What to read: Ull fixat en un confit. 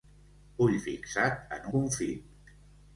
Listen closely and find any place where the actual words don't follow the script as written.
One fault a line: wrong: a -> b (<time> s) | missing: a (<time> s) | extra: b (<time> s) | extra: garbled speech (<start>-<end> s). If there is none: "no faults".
missing: un (1.7 s)